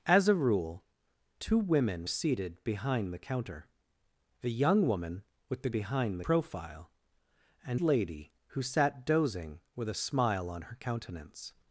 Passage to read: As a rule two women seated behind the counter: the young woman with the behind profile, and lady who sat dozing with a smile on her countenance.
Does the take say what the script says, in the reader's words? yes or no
yes